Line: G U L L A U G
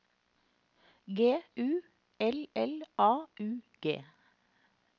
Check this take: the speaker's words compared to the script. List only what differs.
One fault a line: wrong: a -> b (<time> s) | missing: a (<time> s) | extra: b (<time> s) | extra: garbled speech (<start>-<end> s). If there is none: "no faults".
no faults